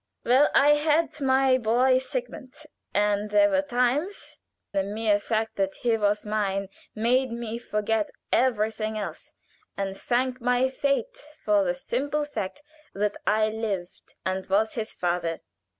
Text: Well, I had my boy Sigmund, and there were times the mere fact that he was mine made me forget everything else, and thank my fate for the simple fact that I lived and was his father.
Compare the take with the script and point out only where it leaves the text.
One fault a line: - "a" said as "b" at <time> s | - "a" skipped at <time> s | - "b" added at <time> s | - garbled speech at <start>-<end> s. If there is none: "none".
none